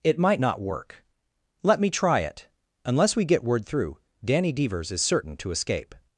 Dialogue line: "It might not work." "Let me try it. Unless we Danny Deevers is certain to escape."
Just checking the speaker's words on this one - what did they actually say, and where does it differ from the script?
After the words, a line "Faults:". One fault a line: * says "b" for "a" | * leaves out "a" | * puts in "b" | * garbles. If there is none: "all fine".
"It might not work." "Let me try it. Unless we get word through, Danny Deevers is certain to escape."
Faults:
* puts in "get word through"